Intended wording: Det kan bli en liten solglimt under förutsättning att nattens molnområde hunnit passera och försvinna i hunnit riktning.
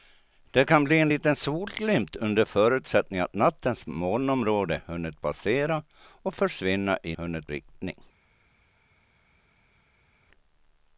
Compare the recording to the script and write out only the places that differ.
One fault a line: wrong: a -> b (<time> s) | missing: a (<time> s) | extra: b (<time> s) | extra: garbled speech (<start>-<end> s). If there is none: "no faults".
no faults